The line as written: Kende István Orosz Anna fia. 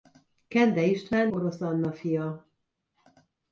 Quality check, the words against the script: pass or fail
pass